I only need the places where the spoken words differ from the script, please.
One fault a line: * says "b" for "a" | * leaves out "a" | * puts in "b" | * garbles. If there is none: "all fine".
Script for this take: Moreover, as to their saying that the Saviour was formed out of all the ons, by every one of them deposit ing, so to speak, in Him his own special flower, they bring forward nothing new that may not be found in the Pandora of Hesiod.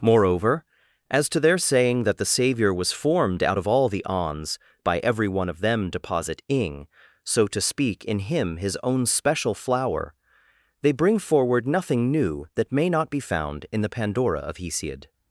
all fine